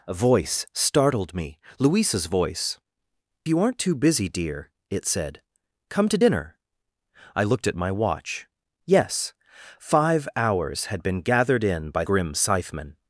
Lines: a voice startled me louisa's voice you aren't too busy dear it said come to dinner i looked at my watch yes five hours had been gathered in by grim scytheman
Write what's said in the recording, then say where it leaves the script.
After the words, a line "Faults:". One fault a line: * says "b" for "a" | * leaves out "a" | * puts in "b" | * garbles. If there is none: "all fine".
a voice startled me louisa's voice you aren't too busy dear it said come to dinner i looked at my watch yes five hours had been gathered in by grim scytheman
Faults:
all fine